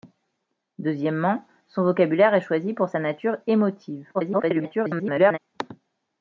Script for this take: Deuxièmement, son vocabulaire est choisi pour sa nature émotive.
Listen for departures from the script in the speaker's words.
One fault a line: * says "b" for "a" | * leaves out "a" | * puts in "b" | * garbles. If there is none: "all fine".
* garbles